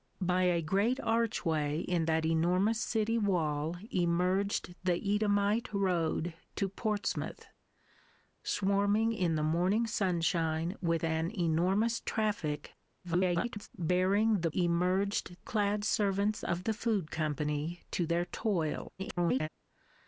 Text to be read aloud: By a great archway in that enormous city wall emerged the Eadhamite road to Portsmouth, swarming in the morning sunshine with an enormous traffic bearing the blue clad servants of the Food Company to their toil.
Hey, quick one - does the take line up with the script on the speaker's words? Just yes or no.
no